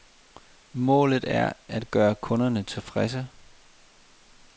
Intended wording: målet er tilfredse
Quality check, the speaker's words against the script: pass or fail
fail